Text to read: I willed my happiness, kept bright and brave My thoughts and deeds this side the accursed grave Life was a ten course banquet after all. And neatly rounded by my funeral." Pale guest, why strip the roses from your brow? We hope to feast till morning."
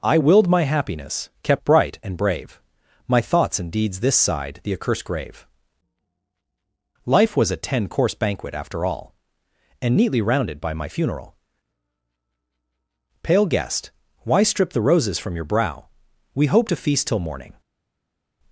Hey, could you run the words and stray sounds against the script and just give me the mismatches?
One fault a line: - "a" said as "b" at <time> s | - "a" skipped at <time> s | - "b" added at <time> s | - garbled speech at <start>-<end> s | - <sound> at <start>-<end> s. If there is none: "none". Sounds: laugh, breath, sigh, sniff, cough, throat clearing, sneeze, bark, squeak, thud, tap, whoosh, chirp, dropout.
none